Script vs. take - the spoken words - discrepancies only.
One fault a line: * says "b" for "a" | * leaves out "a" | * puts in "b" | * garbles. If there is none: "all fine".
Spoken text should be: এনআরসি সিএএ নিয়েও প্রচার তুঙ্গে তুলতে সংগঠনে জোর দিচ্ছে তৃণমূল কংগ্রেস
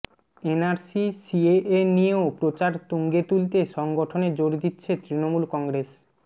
all fine